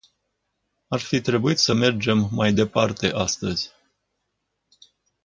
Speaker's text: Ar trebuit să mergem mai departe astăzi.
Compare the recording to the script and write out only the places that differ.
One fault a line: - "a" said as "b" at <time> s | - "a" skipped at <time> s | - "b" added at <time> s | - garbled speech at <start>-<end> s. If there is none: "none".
- "fi" added at 1.0 s